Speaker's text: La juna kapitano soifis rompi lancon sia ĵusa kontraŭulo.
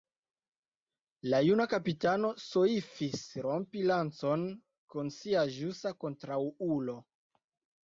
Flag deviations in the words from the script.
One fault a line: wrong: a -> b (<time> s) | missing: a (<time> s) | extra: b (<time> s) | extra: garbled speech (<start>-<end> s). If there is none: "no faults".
extra: kun (5.0 s)